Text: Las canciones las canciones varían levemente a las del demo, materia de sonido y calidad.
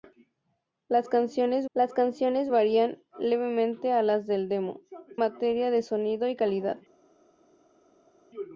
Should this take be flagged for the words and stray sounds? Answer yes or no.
no